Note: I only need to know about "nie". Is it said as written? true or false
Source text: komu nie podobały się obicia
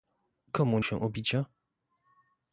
false